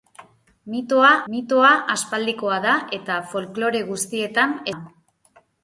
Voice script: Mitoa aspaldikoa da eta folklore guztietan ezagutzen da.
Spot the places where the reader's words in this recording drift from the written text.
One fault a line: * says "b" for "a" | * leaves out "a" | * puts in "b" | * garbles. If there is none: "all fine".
* puts in "mitoa"
* leaves out "ezagutzen"